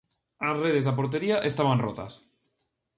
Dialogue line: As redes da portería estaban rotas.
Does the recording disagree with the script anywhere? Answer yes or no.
no